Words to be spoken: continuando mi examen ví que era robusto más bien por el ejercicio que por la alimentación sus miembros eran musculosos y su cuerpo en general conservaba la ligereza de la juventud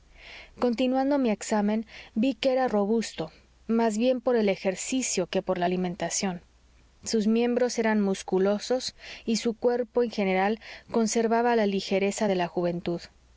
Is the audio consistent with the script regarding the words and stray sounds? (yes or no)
yes